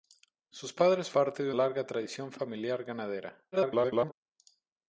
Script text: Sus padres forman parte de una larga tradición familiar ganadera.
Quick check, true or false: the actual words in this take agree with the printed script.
false